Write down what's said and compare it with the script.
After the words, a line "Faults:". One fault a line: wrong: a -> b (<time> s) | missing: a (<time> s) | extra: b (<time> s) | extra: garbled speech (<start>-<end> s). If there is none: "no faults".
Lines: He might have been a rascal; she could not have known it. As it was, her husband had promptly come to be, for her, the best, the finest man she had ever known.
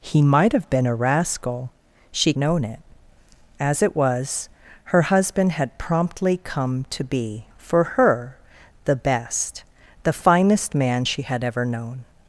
He might have been a rascal; she known it. As it was, her husband had promptly come to be, for her, the best, the finest man she had ever known.
Faults:
missing: could not have (2.3 s)